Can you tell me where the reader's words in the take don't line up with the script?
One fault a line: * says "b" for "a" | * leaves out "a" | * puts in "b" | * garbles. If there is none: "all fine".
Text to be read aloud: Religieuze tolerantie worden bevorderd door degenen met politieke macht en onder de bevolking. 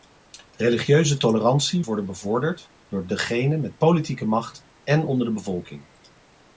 all fine